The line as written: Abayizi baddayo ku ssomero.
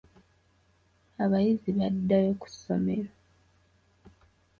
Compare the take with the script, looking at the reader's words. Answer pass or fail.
pass